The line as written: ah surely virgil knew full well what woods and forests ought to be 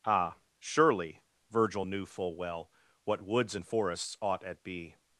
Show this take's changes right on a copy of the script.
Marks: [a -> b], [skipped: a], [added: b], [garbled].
ah surely virgil knew full well what woods and forests ought [to -> at] be